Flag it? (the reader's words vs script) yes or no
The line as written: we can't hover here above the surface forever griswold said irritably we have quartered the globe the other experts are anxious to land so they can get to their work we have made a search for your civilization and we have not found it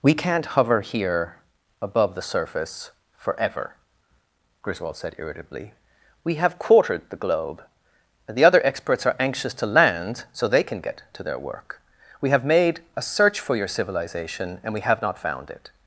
yes